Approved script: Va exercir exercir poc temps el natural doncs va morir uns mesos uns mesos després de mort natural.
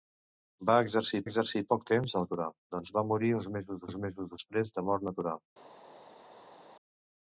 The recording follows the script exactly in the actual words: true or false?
true